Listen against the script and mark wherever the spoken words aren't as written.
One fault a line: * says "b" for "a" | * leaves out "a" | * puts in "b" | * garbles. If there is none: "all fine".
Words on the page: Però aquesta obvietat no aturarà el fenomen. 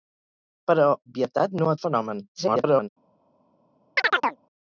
* leaves out "aquesta"
* leaves out "aturarà"
* garbles